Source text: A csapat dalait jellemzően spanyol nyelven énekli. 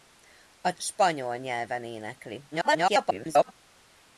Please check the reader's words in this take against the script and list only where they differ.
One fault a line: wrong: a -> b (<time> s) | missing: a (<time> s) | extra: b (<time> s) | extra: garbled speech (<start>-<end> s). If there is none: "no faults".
missing: csapat dalait jellemzően (0.7 s)
extra: garbled speech (2.5-3.5 s)